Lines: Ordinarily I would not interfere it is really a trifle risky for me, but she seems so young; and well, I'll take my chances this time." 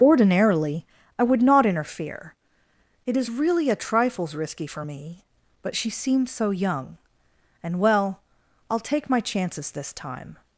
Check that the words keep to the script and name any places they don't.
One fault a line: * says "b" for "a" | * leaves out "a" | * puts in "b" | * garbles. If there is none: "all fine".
* says "trifles" for "trifle"